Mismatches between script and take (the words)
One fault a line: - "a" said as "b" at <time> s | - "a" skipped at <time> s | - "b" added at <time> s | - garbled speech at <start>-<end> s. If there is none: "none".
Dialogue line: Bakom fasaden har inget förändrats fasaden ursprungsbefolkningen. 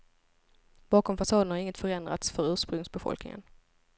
- "fasaden" said as "för" at 2.3 s